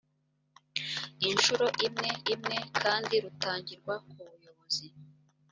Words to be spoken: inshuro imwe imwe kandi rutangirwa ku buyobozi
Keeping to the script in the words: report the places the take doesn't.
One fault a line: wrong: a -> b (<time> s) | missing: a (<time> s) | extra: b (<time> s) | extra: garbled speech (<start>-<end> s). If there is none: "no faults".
no faults